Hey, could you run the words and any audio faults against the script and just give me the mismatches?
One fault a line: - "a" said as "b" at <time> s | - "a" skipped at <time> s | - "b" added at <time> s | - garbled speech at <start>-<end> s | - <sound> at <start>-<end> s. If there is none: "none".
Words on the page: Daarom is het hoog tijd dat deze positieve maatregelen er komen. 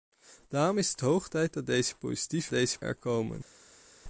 - "maatregelen" said as "deze" at 2.5 s